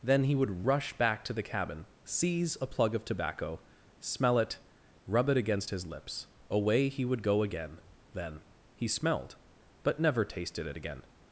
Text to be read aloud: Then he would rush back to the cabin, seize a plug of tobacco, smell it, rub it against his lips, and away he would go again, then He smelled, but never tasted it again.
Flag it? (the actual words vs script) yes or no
yes